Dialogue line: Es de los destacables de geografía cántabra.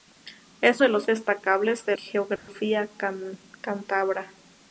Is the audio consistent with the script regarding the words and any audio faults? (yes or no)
no